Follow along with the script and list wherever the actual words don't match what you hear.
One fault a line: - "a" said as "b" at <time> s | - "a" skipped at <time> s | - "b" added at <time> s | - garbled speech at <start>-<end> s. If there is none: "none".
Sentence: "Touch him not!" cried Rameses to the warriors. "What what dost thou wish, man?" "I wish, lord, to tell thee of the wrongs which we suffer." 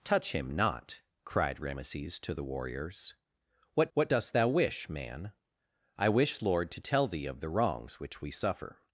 none